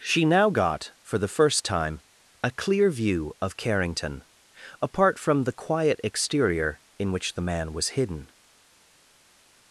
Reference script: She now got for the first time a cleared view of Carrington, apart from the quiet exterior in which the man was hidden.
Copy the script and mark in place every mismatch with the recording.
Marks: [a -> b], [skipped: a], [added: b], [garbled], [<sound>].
She now got for the first time a [cleared -> clear] view of Carrington, apart from the quiet exterior in which the man was hidden.